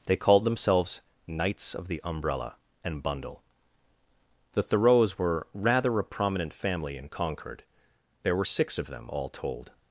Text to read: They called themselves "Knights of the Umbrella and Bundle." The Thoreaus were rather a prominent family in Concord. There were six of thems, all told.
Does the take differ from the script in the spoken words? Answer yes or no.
yes